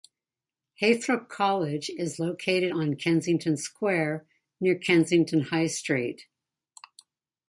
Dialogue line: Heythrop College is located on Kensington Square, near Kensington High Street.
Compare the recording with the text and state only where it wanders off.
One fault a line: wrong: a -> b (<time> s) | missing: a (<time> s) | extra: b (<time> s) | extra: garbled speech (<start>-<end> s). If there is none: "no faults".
no faults